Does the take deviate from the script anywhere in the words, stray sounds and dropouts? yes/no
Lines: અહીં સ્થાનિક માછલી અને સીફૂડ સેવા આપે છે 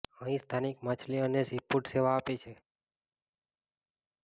no